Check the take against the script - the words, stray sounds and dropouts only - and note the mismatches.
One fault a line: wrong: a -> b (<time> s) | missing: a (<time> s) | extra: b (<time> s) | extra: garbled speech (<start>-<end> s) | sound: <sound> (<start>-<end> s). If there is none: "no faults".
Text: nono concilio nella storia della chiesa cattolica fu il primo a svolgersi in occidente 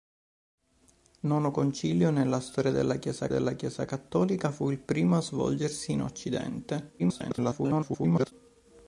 extra: della chiesa (3.3 s)
extra: garbled speech (7.0-8.3 s)